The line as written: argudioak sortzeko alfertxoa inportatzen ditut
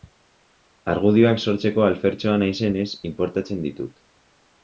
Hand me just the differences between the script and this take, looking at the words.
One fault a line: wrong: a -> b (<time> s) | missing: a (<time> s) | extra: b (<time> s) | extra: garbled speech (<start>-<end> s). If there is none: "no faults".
extra: naizenez (2.5 s)